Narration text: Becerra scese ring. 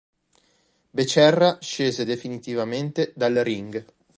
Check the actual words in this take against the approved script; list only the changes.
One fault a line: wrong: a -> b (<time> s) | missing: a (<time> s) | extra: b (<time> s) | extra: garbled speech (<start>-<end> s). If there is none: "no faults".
extra: definitivamente dal (2.0 s)